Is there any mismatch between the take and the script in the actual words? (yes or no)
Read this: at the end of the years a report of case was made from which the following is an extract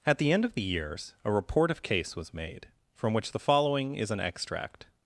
no